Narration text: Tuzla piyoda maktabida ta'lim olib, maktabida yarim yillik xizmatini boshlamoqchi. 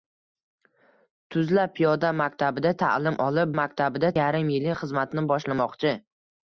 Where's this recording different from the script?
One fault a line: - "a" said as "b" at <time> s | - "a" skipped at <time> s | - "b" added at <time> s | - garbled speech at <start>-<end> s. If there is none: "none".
none